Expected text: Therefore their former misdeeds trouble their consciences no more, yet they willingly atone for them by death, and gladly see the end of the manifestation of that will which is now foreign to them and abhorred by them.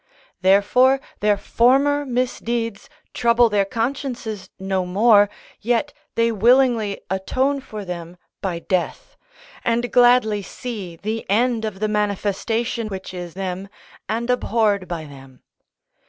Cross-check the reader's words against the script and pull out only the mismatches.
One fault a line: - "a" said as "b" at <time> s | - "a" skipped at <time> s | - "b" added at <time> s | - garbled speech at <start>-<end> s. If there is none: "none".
- "of that will" skipped at 12.9 s
- "now foreign to" skipped at 13.4 s